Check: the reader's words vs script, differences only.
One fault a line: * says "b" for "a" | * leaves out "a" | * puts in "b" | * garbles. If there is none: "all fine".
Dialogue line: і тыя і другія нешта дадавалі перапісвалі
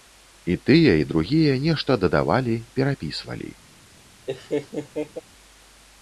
all fine